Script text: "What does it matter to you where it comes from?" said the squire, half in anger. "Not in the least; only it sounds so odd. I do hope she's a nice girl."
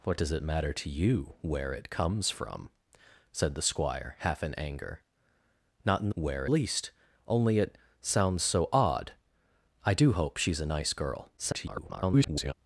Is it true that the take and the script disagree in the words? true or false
true